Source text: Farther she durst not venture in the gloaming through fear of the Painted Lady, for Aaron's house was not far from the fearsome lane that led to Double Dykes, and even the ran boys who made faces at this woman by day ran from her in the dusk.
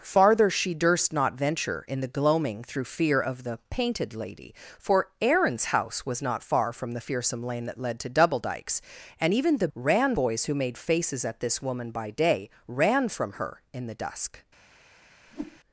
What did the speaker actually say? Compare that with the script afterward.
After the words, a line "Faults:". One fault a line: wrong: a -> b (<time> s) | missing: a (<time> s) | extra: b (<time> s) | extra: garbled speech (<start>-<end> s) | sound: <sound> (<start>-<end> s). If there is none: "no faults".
Farther she durst not venture in the gloaming through fear of the Painted Lady, for Aaron's house was not far from the fearsome lane that led to Double Dykes, and even the ran boys who made faces at this woman by day ran from her in the dusk.
Faults:
sound: whoosh (15.3-15.6 s)